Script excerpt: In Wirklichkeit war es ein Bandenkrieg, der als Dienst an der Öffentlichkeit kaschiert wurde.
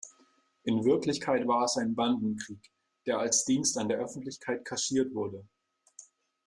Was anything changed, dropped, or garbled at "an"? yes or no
no